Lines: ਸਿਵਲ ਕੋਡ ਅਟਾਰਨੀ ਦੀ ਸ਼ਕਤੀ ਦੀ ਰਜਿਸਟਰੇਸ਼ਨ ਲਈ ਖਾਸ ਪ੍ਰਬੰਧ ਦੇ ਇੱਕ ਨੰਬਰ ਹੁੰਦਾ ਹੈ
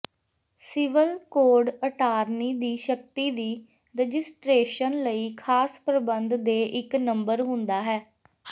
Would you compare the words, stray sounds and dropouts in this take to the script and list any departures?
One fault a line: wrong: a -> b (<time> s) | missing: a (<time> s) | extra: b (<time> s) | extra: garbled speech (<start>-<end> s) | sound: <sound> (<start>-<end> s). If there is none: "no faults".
no faults